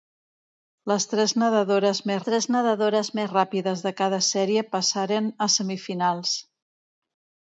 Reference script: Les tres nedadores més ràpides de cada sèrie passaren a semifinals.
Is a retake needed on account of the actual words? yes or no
yes